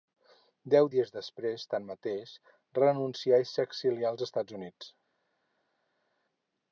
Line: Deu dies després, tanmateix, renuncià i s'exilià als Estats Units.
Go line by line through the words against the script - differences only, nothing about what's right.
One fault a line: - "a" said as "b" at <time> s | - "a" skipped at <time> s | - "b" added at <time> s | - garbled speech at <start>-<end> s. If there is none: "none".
none